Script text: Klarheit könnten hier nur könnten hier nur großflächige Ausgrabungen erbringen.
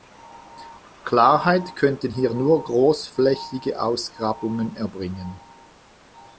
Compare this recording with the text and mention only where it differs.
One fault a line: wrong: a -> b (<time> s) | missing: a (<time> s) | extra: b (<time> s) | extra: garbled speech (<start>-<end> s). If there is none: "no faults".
missing: könnten hier nur (2.6 s)